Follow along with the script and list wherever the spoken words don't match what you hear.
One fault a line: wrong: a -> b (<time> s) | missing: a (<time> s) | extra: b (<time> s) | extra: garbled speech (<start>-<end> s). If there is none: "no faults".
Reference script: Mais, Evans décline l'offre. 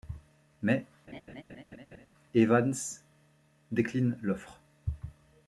no faults